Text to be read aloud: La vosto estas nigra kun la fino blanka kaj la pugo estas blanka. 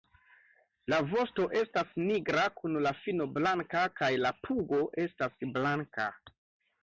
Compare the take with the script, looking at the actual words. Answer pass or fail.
pass